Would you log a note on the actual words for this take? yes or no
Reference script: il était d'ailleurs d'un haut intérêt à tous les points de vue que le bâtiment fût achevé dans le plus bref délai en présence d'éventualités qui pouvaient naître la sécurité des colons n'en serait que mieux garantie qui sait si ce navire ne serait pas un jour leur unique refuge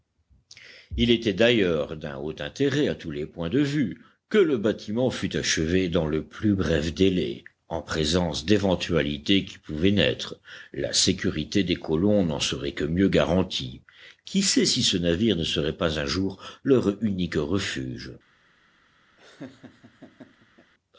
no